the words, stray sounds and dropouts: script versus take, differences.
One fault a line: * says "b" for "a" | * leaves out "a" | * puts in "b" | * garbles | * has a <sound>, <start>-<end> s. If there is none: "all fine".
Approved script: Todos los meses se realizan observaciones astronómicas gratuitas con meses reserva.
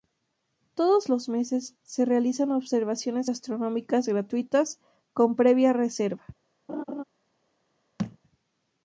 * says "previa" for "meses"
* has a laugh, 6.7-7.0 s
* has a thud, 8.0-8.2 s